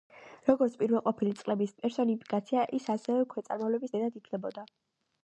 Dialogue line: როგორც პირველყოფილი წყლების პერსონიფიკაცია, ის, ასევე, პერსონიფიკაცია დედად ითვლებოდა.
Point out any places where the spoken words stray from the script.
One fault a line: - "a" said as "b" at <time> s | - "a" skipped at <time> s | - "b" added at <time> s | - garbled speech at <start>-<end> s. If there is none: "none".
- "პერსონიფიკაცია" said as "ქვეწარმავლების" at 3.4 s